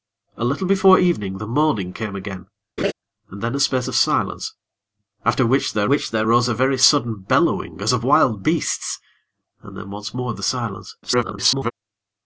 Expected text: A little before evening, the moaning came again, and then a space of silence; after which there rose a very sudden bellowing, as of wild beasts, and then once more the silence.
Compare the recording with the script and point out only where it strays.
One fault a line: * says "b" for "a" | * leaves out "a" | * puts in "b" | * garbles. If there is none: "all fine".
* puts in "which there"
* garbles